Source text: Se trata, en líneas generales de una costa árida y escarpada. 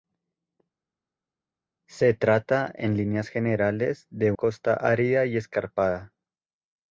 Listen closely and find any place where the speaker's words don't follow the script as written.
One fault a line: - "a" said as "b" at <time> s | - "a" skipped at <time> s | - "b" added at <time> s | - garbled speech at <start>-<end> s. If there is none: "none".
- "una" skipped at 4.3 s